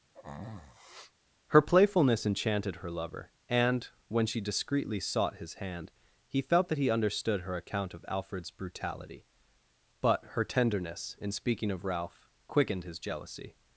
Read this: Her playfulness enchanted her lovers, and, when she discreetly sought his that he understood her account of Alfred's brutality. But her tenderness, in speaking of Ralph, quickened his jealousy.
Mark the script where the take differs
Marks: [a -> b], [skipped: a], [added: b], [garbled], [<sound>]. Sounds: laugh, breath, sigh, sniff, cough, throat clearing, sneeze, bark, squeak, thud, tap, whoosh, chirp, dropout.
[sneeze] Her playfulness enchanted her [lovers, -> lover] and, when she discreetly sought his [added: hand he felt] that he understood her account of Alfred's brutality. But her tenderness, in speaking of Ralph, quickened his jealousy.